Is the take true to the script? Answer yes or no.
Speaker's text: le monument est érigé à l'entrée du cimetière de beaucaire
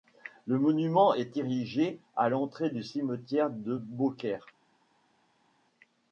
yes